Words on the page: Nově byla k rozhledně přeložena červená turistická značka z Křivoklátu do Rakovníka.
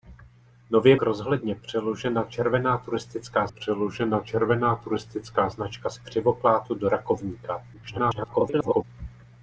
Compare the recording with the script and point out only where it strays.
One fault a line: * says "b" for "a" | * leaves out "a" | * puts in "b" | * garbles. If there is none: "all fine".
* leaves out "byla"
* puts in "přeložena červená turistická"
* garbles